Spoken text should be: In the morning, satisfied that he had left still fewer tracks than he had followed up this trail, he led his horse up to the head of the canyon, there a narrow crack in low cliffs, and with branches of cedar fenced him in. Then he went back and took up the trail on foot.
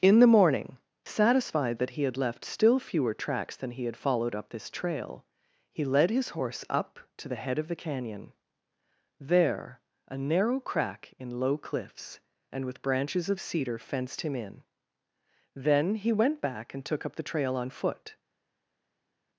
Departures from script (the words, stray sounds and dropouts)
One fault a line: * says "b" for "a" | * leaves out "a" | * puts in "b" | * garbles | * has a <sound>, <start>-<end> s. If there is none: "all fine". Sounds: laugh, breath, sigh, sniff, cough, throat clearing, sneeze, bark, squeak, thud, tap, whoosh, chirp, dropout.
all fine